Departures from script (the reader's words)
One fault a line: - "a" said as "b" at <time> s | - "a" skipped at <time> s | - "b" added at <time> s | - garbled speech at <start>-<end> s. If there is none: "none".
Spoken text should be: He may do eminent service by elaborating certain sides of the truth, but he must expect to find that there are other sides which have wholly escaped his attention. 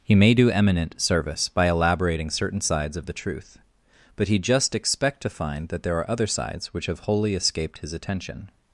- "must" said as "just" at 4.4 s